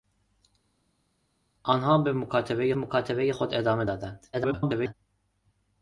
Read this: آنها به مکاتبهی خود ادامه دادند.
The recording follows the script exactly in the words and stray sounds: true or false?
false